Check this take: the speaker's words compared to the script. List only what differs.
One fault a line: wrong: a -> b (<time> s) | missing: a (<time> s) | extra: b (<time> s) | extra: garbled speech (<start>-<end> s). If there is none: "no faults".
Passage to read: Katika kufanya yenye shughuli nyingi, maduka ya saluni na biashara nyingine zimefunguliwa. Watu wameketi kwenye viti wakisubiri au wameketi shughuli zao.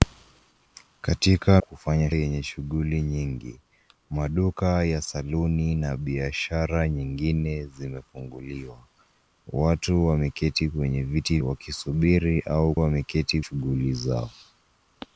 no faults